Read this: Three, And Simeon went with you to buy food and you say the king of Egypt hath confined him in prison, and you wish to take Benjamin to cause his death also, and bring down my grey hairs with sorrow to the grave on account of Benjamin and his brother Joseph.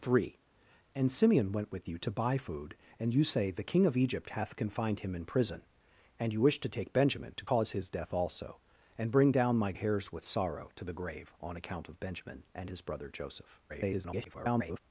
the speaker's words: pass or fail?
fail